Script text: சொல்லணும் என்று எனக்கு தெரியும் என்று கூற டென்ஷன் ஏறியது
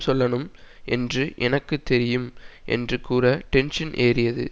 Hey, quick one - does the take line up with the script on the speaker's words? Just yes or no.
yes